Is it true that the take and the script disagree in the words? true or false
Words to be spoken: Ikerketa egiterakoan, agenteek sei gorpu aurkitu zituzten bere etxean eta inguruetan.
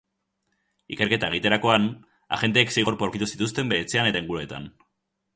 false